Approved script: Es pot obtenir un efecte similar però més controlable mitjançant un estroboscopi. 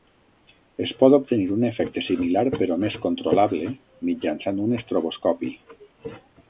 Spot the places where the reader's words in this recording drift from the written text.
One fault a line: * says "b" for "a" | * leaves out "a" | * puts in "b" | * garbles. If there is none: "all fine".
all fine